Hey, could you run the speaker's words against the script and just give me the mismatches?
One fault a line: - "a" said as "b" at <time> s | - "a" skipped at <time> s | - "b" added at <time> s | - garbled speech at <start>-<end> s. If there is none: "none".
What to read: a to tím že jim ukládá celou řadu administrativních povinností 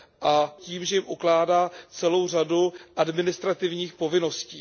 - "to" skipped at 0.6 s